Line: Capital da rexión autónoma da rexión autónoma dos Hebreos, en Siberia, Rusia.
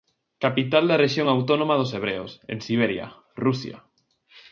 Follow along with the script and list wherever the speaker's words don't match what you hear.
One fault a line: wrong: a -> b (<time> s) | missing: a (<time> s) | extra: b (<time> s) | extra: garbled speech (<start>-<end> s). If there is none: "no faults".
missing: da rexión autónoma (1.8 s)